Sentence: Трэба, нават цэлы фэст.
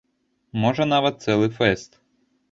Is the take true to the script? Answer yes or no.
no